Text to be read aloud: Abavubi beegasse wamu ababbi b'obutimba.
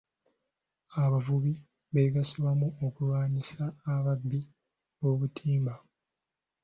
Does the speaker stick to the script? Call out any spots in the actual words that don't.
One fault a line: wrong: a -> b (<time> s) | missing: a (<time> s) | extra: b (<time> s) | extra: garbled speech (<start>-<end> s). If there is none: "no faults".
extra: okulwanyisa (2.9 s)